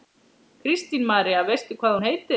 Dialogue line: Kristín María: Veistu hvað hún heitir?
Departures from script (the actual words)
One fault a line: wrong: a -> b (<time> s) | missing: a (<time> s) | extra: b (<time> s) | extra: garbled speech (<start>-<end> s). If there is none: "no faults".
no faults